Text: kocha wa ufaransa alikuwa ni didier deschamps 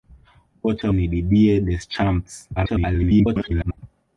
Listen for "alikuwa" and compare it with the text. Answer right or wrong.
wrong